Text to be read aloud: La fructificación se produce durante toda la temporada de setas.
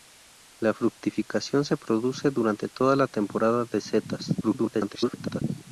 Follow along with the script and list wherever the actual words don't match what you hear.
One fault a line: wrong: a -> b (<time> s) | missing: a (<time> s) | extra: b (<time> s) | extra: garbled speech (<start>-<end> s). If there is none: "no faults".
extra: garbled speech (4.4-5.4 s)